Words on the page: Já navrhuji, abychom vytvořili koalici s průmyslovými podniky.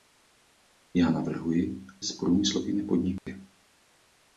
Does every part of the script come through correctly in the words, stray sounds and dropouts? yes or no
no